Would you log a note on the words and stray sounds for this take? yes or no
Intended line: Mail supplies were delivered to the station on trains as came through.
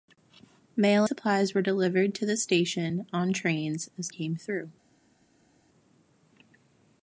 no